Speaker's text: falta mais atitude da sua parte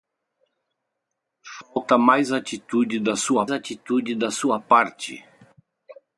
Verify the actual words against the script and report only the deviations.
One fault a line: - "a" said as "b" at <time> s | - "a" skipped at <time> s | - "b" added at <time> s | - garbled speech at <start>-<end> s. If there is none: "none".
- "atitude da sua" added at 3.5 s